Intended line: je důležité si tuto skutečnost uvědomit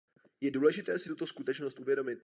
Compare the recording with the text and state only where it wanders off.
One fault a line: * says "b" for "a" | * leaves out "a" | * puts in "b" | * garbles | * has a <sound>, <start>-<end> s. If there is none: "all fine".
all fine